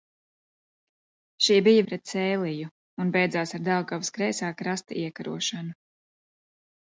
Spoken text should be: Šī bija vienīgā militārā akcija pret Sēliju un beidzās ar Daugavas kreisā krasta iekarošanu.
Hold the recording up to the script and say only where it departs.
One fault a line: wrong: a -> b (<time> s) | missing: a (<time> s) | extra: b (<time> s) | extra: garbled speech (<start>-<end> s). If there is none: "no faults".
missing: vienīgā militārā akcija (1.8 s)